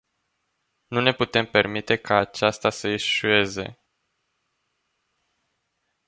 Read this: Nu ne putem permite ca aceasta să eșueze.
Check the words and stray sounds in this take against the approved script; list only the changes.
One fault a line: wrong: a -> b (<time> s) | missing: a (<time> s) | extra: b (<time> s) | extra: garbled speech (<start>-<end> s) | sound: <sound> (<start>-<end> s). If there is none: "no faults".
no faults